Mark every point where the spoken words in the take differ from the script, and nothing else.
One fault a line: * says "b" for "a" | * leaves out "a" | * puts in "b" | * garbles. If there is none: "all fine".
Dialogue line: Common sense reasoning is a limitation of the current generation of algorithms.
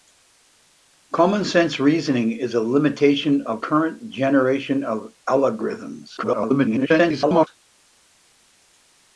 * leaves out "the"
* garbles